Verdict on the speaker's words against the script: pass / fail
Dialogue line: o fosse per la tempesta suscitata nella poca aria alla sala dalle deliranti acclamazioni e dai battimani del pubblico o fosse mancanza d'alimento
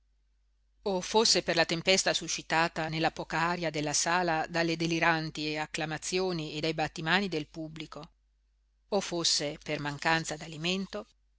fail